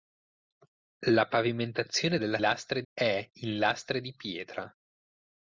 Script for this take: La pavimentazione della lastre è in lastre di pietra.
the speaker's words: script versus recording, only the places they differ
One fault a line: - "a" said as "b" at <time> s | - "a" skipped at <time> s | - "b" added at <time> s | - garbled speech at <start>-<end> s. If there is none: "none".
none